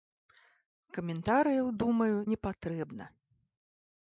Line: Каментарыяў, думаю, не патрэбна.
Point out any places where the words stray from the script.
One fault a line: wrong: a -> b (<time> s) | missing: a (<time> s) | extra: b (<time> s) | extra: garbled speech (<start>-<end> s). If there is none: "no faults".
no faults